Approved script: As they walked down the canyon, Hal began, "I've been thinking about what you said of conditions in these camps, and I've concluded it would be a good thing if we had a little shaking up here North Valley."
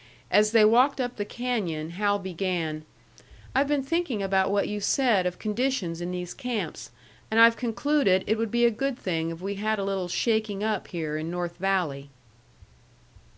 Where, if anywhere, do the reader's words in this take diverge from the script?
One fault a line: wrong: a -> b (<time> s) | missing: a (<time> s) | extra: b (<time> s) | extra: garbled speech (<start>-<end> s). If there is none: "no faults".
wrong: down -> up (1.0 s)
extra: in (11.2 s)